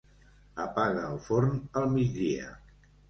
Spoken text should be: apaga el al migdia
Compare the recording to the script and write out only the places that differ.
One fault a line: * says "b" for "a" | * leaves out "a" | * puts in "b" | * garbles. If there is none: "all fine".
* puts in "forn"